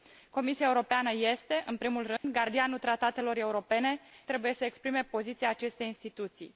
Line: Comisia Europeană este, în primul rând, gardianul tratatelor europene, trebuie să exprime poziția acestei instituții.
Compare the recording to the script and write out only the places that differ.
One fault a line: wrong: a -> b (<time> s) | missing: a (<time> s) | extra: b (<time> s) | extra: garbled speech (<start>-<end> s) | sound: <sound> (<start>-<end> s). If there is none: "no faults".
sound: dropout (2.2-2.2 s)